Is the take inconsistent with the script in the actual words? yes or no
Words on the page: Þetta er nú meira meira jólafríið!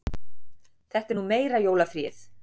yes